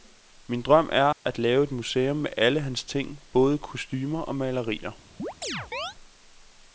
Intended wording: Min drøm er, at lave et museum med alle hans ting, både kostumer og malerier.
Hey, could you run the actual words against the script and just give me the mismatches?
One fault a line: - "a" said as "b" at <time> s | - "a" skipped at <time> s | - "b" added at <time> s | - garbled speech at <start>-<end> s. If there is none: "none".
none